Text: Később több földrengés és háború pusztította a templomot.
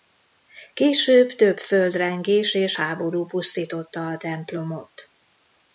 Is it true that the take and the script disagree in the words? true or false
false